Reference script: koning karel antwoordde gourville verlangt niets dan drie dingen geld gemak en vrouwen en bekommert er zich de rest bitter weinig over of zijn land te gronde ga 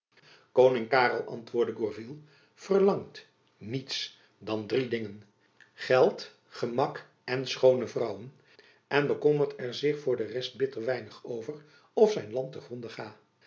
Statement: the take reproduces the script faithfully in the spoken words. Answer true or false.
false